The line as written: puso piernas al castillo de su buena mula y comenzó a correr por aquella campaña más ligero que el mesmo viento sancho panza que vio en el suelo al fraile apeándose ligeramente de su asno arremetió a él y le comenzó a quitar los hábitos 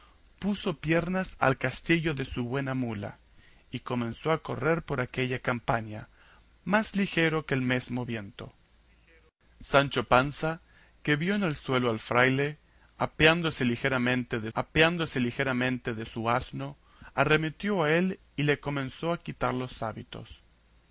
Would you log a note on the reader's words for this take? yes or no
yes